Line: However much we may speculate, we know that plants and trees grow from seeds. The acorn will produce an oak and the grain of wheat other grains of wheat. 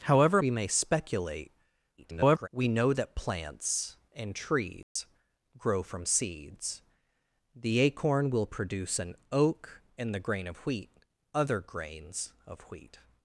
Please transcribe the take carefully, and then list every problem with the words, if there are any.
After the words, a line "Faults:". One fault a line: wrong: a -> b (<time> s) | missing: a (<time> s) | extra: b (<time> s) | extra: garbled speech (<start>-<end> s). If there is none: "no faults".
However we may speculate, [garbled] we know that plants and trees grow from seeds. The acorn will produce an oak and the grain of wheat other grains of wheat.
Faults:
missing: much (0.4 s)
extra: garbled speech (2.0-2.5 s)